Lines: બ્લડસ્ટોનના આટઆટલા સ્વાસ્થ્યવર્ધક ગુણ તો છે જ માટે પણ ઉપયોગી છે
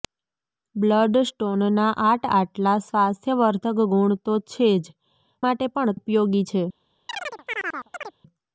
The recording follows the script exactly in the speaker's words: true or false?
true